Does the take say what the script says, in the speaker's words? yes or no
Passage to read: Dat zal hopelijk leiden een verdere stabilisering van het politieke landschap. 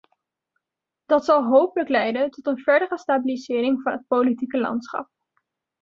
no